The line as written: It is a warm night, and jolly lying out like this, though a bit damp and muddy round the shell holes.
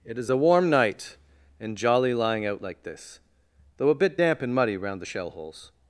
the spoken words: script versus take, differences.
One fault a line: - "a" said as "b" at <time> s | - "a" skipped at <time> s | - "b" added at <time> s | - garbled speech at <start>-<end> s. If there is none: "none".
none